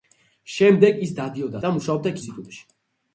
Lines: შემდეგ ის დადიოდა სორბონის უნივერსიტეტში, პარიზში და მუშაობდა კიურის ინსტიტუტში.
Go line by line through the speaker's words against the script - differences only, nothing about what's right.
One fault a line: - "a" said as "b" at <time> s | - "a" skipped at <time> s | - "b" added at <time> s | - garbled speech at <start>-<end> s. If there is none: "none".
- "სორბონის უნივერსიტეტში პარიზში" skipped at 1.6 s
- "კიურის" skipped at 2.1 s